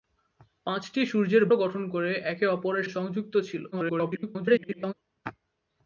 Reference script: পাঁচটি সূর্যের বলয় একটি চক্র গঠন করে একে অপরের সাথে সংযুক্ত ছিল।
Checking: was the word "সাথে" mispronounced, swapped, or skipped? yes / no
yes